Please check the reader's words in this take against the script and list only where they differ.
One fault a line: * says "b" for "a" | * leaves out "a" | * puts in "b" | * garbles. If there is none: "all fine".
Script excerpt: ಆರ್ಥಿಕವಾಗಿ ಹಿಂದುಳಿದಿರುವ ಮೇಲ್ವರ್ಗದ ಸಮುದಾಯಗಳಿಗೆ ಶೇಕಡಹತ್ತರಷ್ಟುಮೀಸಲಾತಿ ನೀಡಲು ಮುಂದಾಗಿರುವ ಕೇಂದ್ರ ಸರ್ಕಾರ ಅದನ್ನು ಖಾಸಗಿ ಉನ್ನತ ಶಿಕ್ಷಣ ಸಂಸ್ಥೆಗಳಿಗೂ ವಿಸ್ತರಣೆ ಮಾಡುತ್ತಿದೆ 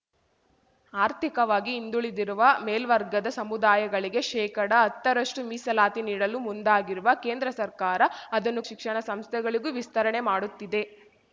* leaves out "ಖಾಸಗಿ ಉನ್ನತ"